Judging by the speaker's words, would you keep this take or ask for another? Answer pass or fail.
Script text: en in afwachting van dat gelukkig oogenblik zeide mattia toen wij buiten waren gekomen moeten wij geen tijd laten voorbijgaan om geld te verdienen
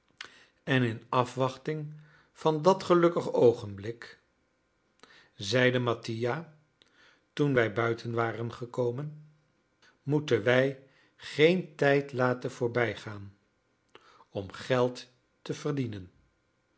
pass